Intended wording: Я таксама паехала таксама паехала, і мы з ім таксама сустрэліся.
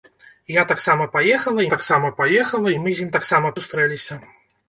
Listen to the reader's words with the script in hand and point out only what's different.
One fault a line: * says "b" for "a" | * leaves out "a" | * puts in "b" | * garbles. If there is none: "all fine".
all fine